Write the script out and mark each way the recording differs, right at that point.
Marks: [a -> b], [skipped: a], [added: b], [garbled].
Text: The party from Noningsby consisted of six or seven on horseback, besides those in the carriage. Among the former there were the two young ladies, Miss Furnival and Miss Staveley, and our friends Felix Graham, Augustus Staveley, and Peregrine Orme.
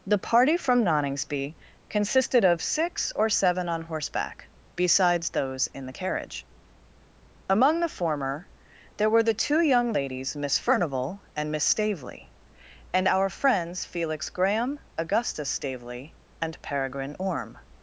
The party from Noningsby consisted of six or seven on horseback, besides those in the carriage. Among the former there were the two young ladies, Miss Furnival and Miss Staveley, and our friends Felix Graham, Augustus Staveley, and Peregrine Orme.